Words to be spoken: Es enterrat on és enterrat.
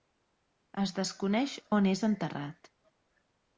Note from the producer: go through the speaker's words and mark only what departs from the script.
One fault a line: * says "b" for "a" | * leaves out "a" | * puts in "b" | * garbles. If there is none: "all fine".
* says "desconeix" for "enterrat"